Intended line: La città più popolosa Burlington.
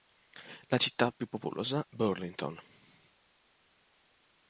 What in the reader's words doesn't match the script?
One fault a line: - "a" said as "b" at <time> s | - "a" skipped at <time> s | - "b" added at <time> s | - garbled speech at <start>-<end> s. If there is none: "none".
none